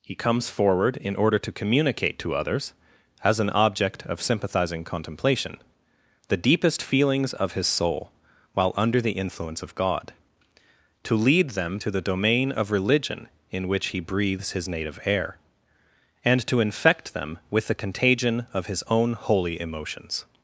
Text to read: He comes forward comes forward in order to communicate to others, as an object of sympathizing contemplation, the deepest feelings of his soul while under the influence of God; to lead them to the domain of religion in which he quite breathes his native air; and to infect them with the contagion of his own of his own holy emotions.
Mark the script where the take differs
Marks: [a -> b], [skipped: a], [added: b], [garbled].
He comes forward [skipped: comes forward] in order to communicate to others, as an object of sympathizing contemplation, the deepest feelings of his soul while under the influence of God; to lead them to the domain of religion in which he [skipped: quite] breathes his native air; and to infect them with the contagion of his own [skipped: of his own] holy emotions.